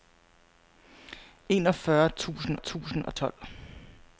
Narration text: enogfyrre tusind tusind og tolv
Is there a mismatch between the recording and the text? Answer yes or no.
no